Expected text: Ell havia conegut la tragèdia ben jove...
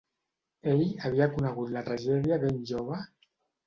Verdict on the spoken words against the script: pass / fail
pass